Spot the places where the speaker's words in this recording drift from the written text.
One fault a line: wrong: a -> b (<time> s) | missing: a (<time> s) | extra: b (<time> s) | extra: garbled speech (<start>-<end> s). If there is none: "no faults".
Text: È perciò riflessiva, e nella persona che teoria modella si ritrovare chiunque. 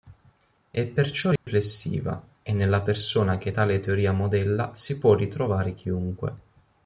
extra: tale (3.5 s)
extra: può (5.0 s)